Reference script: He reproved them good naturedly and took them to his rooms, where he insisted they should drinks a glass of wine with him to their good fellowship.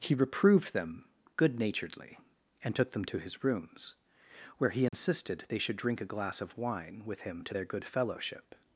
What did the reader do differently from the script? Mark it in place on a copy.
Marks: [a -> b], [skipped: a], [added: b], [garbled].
He reproved them good naturedly and took them to his rooms, where he insisted they should [drinks -> drink] a glass of wine with him to their good fellowship.